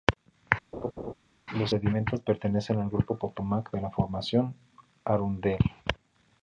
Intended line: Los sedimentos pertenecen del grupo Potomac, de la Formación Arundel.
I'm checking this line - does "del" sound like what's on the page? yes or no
no